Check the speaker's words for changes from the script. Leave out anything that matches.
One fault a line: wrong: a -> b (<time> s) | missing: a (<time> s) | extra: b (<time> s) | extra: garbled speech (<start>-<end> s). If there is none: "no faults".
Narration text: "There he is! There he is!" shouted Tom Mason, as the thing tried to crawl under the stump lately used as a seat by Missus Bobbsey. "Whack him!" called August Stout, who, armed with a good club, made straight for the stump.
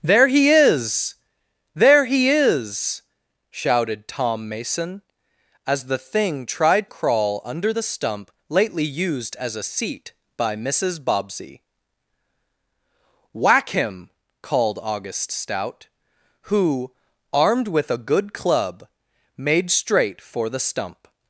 missing: to (6.9 s)